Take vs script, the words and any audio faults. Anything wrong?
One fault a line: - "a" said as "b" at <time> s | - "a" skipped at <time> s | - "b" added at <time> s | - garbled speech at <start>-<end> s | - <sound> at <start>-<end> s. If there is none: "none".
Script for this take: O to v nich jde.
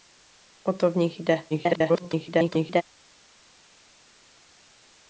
- garbled speech at 1.5-2.8 s